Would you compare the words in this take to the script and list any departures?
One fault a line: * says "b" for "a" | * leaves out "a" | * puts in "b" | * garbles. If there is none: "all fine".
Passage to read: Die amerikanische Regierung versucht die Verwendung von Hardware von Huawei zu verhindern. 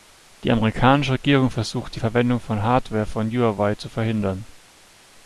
all fine